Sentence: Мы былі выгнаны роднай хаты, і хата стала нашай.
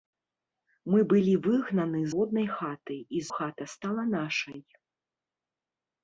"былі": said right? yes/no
yes